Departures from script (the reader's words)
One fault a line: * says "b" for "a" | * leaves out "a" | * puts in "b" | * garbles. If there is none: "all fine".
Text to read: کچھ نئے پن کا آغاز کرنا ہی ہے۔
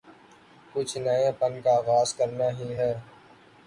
all fine